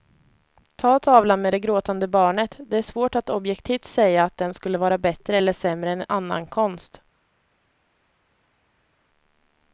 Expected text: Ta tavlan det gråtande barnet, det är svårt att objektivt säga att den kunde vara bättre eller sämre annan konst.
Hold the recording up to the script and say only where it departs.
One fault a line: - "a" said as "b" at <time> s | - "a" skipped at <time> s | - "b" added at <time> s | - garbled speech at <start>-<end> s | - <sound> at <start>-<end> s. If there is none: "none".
- "med" added at 1.4 s
- "kunde" said as "skulle" at 4.5 s
- "än" added at 5.9 s